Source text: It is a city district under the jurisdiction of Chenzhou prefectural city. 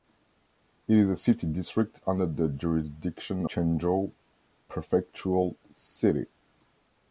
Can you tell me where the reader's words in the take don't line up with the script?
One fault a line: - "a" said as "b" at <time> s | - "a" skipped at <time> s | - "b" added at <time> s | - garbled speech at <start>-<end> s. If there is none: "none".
- "of" skipped at 3.5 s